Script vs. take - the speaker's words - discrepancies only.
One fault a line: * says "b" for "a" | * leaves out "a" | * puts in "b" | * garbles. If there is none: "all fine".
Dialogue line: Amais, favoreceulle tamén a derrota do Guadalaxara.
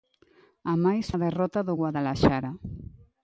* leaves out "favoreceulle tamén"